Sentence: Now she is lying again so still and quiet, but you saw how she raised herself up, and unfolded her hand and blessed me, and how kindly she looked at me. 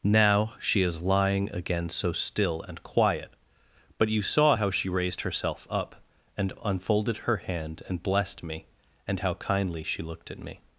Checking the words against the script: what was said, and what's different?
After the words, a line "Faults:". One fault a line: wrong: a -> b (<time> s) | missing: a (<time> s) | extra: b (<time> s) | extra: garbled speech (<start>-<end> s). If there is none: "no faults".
Now she is lying again so still and quiet, but you saw how she raised herself up, and unfolded her hand and blessed me, and how kindly she looked at me.
Faults:
no faults